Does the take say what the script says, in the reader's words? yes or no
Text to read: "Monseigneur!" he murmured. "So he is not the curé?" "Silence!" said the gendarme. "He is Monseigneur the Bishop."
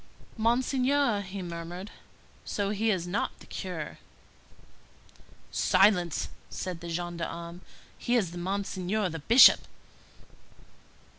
yes